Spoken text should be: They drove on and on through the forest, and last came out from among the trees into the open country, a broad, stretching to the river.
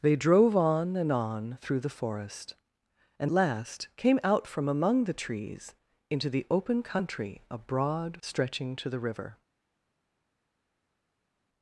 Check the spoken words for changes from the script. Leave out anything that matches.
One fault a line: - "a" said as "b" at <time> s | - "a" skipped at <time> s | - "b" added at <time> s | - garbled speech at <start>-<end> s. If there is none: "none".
none